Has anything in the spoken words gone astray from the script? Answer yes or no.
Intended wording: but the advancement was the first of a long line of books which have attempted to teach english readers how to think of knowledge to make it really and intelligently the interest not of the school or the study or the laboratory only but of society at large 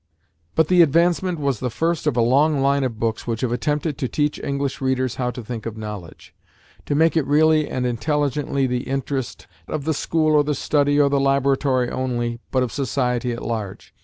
yes